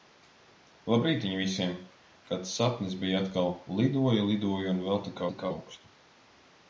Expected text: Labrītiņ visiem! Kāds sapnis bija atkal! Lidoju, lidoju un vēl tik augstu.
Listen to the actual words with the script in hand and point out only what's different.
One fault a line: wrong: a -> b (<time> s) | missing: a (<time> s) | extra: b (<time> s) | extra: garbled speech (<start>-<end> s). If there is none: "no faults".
extra: tik (5.3 s)